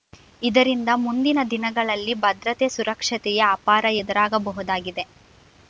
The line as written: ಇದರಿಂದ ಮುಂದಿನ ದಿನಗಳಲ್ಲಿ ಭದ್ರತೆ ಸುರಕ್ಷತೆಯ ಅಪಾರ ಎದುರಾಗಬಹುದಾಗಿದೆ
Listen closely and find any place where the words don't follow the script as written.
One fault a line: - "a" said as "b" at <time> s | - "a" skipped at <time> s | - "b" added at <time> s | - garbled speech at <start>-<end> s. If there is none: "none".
none